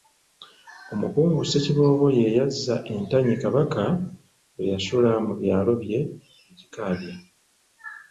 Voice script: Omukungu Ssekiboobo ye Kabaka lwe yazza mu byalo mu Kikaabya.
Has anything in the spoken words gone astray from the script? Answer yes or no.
yes